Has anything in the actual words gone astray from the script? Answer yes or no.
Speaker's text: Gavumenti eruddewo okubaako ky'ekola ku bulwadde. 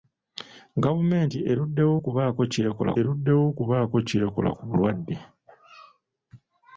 yes